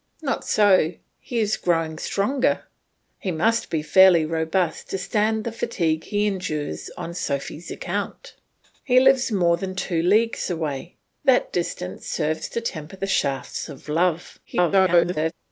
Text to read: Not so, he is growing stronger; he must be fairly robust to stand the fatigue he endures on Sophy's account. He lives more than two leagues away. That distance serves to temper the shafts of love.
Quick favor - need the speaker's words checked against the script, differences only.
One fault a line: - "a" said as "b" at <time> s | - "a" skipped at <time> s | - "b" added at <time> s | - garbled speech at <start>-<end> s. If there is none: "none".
- garbled speech at 14.4-15.3 s